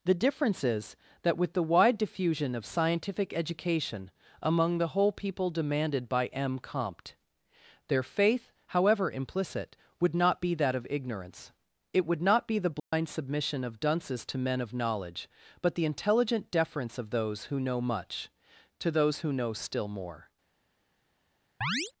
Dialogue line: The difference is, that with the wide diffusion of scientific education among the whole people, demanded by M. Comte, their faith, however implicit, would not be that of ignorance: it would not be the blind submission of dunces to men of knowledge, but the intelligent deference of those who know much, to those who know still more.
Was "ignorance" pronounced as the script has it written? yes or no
yes